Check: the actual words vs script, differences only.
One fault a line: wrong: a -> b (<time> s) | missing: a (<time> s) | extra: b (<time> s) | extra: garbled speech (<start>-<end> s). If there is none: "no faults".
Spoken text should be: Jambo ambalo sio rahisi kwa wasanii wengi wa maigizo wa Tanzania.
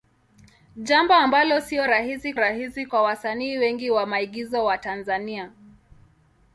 extra: rahisi (2.4 s)